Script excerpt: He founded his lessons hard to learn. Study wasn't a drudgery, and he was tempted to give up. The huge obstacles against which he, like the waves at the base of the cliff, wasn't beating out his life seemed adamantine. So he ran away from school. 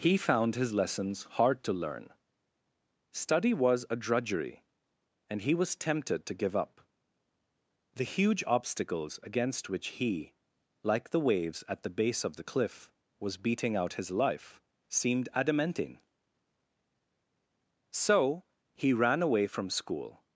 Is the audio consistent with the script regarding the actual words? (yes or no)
no